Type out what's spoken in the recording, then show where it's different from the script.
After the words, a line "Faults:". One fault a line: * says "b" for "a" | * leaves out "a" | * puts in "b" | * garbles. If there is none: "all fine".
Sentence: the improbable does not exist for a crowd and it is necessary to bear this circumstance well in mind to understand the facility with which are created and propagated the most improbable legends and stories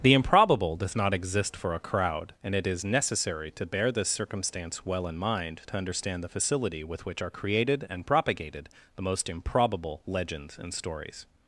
the improbable does not exist for a crowd and it is necessary to bear this circumstance well in mind to understand the facility with which are created and propagated the most improbable legends and stories
Faults:
all fine